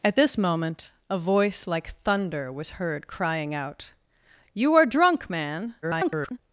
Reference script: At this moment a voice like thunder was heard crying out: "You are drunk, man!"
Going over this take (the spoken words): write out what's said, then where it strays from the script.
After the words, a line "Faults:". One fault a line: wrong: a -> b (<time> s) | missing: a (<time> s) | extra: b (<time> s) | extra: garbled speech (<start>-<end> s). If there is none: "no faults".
At this moment a voice like thunder was heard crying out: "You are drunk, man!" [garbled]
Faults:
extra: garbled speech (5.8-6.4 s)